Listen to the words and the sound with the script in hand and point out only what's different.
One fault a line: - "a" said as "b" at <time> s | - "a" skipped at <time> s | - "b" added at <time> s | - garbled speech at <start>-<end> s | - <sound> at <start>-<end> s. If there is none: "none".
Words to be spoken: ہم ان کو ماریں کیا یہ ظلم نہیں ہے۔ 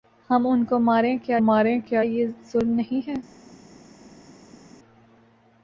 - "ماریں کیا" added at 1.4 s